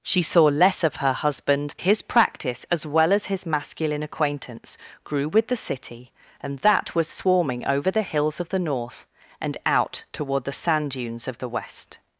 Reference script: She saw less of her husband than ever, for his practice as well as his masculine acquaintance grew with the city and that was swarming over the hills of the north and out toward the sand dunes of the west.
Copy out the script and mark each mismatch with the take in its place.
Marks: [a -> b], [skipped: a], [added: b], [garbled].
She saw less of her husband [skipped: than ever, for] his practice as well as his masculine acquaintance grew with the city and that was swarming over the hills of the north and out toward the sand dunes of the west.